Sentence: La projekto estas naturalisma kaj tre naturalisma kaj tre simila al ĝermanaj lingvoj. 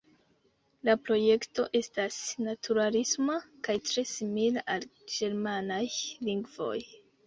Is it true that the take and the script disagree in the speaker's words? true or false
true